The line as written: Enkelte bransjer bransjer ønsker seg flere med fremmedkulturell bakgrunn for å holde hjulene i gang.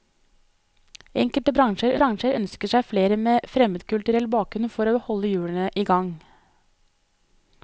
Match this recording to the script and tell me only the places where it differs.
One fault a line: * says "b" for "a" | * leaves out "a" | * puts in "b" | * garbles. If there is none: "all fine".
all fine